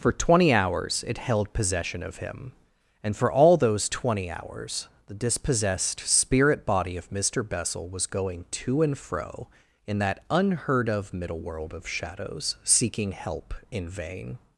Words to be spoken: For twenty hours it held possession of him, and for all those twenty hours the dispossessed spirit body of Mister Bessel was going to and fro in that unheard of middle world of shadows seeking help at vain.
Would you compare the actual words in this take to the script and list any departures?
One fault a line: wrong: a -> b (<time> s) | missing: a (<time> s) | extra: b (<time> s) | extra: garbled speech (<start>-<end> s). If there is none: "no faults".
wrong: at -> in (13.7 s)